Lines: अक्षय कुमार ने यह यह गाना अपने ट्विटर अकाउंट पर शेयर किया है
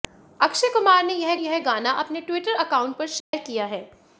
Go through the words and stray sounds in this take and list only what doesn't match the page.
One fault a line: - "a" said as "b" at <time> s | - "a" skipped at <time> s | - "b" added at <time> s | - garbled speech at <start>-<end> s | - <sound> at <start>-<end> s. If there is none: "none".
- dropout at 3.2-3.3 s